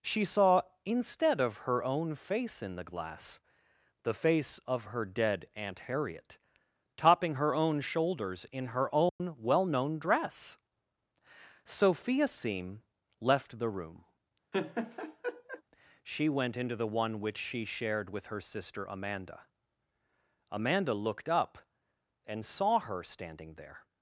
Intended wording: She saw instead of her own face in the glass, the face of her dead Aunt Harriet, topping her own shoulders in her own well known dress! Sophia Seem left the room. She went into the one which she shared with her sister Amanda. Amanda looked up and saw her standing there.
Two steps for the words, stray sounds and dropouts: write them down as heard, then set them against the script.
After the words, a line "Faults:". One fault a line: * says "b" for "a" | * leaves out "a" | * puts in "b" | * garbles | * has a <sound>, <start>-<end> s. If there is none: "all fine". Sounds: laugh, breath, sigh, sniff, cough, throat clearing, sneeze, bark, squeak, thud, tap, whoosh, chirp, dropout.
She saw instead of her own face in the glass, the face of her dead Aunt Harriet, topping her own shoulders in her own well known dress! Sophia Seem left the room. She went into the one which she shared with her sister Amanda. Amanda looked up and saw her standing there.
Faults:
* has a dropout, 9.1-9.2 s
* has a laugh, 14.5-15.6 s